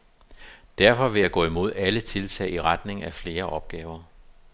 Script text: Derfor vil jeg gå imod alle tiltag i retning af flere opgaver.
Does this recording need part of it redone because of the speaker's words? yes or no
no